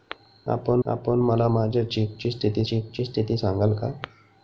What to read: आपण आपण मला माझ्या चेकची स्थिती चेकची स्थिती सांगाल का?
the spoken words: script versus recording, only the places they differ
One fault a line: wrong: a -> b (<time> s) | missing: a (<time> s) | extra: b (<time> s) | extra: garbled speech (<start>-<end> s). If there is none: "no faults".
no faults